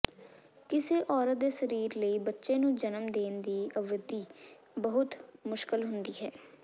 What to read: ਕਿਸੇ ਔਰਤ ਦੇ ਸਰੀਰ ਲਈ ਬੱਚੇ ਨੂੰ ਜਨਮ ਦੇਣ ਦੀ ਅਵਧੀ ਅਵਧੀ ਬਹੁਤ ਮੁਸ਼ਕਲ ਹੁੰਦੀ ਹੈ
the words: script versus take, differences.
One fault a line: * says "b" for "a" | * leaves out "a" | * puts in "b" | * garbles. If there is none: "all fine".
* leaves out "ਅਵਧੀ"